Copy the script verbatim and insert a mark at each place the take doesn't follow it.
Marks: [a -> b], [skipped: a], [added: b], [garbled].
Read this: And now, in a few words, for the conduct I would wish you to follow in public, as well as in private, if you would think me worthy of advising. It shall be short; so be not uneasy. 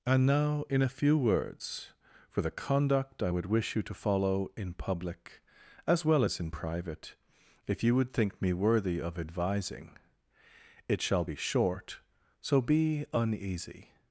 And now, in a few words, for the conduct I would wish you to follow in public, as well as in private, if you would think me worthy of advising. It shall be short; so be [skipped: not] uneasy.